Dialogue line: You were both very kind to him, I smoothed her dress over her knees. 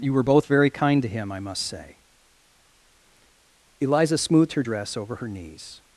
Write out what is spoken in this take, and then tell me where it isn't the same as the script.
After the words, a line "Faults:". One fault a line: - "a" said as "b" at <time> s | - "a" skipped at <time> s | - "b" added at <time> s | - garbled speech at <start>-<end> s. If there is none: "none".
You were both very kind to him, I must say." Eliza smoothed her dress over her knees.
Faults:
- "must say Eliza" added at 1.4 s